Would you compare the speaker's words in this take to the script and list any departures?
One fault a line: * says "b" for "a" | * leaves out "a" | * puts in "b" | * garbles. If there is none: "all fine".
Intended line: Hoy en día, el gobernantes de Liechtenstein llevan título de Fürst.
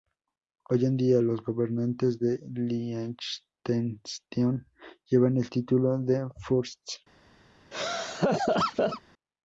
* says "los" for "el"
* puts in "el"